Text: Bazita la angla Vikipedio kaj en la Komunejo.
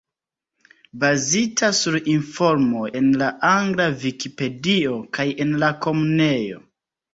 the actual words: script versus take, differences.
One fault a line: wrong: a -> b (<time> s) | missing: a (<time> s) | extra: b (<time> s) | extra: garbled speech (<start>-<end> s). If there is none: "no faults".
extra: sur informoj en (1.8 s)